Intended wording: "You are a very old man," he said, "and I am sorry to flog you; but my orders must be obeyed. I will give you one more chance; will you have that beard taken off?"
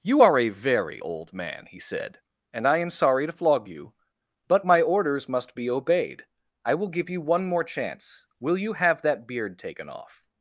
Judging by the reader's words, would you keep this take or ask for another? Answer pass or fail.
pass